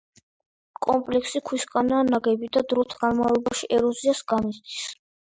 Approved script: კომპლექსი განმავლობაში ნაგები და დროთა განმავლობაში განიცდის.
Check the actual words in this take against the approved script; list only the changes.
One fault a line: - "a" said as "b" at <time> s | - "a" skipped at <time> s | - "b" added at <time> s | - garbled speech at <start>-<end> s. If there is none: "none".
- "განმავლობაში" said as "ქვისგანაა" at 1.5 s
- "ეროზიას" added at 3.8 s